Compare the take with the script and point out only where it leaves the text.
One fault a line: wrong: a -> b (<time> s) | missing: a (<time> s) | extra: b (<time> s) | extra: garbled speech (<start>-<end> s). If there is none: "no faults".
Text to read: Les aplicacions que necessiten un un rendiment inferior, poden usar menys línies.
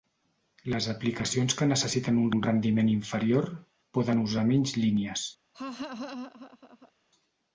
no faults